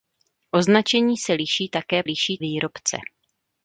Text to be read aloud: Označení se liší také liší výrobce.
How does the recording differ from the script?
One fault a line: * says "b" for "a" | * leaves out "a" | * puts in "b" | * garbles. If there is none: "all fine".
all fine